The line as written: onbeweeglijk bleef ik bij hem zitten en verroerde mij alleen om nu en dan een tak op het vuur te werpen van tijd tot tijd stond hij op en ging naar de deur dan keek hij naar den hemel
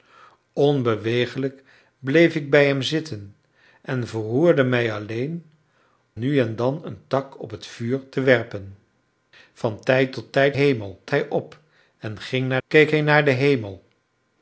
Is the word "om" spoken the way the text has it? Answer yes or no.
no